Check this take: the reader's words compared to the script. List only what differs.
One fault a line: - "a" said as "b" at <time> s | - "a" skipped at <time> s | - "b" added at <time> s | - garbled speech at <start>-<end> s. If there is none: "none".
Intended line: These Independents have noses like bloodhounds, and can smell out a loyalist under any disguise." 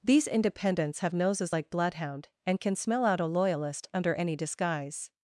- "bloodhounds" said as "bloodhound" at 1.7 s